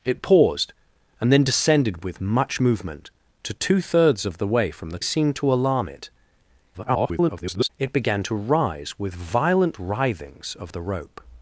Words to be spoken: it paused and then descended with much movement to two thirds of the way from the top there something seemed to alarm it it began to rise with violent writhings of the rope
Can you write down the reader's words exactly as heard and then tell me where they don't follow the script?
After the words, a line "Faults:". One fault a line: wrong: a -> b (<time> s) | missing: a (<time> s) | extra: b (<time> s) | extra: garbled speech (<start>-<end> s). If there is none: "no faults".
it paused and then descended with much movement to two thirds of the way from the seemed to alarm it [garbled] it began to rise with violent writhings of the rope
Faults:
missing: top there something (5.0 s)
extra: garbled speech (6.7-7.7 s)